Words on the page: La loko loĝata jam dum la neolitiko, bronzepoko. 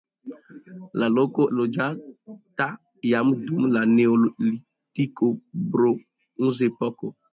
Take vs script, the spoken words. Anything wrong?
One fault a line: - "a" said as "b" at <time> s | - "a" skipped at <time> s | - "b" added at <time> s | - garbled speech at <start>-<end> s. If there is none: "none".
none